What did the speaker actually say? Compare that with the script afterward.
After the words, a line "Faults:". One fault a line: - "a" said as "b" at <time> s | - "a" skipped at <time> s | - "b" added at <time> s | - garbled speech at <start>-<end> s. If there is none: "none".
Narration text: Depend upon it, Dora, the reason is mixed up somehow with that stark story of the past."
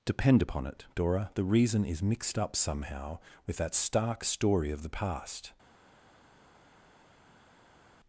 Depend upon it, Dora, the reason is mixed up somehow with that stark story of the past."
Faults:
none